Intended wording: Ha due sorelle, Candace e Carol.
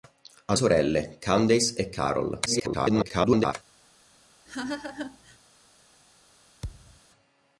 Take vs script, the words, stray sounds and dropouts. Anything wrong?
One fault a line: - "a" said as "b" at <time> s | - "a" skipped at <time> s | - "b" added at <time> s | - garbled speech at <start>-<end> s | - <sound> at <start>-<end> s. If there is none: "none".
- "due" skipped at 0.6 s
- garbled speech at 2.5-3.5 s
- laugh at 4.5-5.4 s
- thud at 6.6-7.0 s